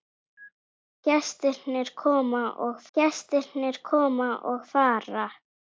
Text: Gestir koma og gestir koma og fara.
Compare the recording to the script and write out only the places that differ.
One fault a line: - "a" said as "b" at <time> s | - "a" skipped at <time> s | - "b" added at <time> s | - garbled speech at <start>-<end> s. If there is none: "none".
none